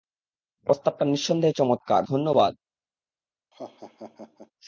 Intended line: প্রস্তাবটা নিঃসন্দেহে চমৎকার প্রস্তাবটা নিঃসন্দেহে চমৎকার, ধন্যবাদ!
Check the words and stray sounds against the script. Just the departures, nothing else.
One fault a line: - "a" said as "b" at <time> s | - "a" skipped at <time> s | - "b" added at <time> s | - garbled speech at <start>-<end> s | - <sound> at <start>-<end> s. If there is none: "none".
- "প্রস্তাবটা নিঃসন্দেহে চমৎকার" skipped at 2.0 s
- laugh at 3.5-4.5 s